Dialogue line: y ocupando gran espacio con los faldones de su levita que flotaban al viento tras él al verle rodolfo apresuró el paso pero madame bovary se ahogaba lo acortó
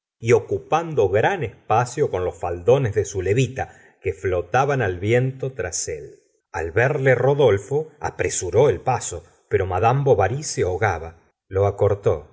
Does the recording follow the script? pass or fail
pass